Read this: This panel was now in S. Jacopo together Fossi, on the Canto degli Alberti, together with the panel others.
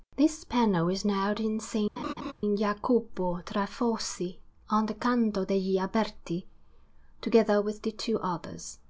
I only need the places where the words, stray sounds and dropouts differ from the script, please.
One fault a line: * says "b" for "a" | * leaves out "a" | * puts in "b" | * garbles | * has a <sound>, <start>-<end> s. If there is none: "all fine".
* says "is" for "was"
* has a laugh, 2.0-2.3 s
* says "tra" for "together"
* says "two" for "panel"